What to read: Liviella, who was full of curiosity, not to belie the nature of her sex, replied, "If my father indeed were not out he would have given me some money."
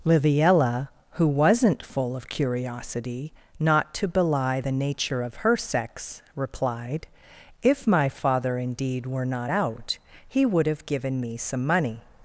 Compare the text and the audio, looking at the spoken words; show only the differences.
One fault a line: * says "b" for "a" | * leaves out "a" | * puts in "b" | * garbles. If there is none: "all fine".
* says "wasn't" for "was"